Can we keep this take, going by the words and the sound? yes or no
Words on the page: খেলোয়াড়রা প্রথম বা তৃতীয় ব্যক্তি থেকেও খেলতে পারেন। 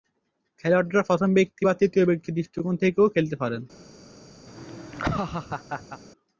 no